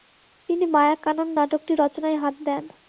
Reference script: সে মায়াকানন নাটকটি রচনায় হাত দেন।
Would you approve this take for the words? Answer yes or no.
no